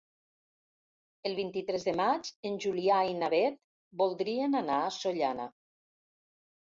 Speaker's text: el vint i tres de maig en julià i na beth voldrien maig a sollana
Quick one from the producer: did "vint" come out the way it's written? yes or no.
yes